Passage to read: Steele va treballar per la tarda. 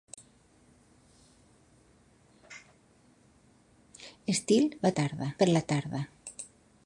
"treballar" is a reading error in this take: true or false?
true